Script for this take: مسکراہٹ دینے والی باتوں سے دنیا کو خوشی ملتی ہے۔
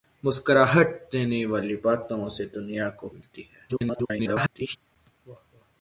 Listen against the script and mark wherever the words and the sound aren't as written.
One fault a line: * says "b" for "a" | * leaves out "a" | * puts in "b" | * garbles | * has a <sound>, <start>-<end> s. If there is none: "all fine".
* leaves out "خوشی"
* garbles